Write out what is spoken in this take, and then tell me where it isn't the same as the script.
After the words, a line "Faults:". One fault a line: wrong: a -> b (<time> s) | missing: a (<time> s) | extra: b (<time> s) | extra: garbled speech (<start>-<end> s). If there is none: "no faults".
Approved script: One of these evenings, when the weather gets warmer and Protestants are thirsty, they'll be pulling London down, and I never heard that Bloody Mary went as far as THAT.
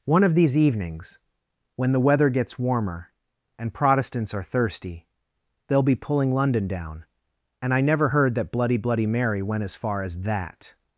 One of these evenings, when the weather gets warmer and Protestants are thirsty, they'll be pulling London down, and I never heard that Bloody Bloody Mary went as far as THAT.
Faults:
extra: Bloody (8.8 s)